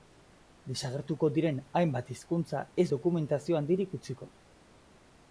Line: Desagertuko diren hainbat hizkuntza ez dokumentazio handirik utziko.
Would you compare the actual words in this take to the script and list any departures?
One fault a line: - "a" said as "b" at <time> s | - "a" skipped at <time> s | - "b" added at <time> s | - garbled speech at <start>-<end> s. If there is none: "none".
none